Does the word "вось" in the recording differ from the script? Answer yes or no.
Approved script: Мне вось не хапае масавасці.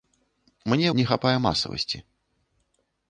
yes